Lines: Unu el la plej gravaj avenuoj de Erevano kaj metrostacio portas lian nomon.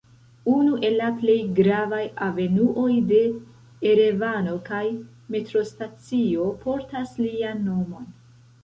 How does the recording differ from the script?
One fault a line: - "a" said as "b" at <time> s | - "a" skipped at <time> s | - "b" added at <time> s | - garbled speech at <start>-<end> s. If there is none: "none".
none